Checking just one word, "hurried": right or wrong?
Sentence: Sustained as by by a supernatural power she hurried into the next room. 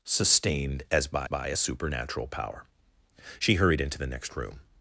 right